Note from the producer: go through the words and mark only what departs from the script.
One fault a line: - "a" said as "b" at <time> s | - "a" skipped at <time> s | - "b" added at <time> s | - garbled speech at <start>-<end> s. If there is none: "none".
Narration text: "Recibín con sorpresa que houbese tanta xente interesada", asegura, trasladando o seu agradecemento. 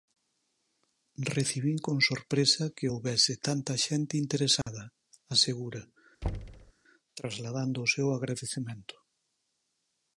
none